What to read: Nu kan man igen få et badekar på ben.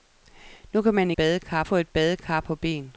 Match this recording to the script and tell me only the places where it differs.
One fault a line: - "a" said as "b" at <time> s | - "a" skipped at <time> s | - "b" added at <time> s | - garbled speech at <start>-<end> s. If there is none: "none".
- "igen" said as "badekar" at 1.1 s